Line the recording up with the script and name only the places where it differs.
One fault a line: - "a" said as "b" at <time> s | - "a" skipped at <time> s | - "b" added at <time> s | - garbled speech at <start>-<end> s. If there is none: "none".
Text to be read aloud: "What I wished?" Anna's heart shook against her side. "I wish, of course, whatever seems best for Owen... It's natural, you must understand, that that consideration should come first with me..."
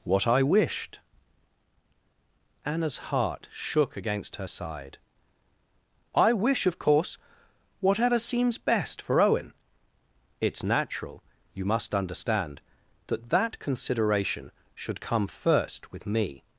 none